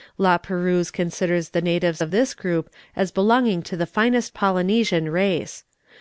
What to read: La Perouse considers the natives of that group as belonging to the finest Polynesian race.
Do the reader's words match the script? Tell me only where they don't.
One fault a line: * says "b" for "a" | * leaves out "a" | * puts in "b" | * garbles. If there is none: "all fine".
* says "this" for "that"